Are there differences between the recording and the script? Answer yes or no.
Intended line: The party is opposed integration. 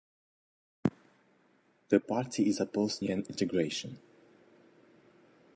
no